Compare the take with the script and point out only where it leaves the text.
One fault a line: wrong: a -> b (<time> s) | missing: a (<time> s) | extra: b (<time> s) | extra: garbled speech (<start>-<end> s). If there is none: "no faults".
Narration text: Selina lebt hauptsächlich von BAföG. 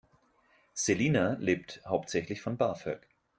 no faults